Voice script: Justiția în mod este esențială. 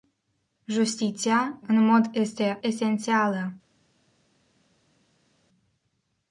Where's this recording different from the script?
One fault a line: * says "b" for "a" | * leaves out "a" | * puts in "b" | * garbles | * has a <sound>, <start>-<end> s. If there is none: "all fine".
all fine